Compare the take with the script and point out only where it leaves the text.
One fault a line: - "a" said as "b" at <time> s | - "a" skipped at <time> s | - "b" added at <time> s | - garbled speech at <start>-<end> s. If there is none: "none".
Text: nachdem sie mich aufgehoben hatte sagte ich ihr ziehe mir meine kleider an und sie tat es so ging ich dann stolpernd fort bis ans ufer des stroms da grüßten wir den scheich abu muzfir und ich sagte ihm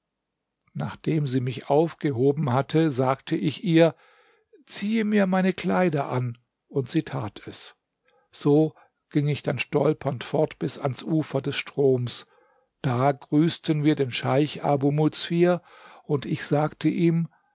none